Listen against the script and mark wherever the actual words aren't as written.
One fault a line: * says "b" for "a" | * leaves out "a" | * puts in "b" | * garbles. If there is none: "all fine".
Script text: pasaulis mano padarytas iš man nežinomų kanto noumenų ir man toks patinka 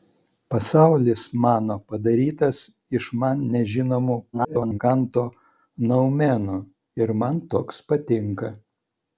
* garbles